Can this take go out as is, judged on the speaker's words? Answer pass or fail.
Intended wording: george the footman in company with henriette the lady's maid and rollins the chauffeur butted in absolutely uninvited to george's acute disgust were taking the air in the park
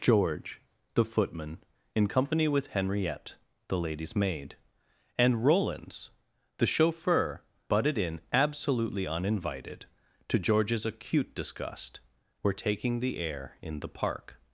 pass